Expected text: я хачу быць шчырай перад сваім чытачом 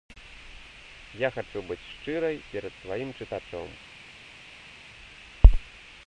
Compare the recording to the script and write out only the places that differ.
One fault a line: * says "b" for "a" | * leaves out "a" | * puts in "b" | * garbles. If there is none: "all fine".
all fine